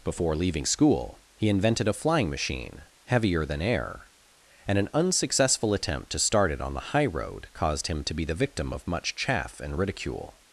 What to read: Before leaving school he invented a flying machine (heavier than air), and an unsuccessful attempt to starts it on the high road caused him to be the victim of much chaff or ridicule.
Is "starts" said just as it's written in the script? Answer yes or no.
no